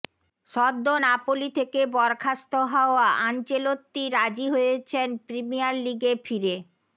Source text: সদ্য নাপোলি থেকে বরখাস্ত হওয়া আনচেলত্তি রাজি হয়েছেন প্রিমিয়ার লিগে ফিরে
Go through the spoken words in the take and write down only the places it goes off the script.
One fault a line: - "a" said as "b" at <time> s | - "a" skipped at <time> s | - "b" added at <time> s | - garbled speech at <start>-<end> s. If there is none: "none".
none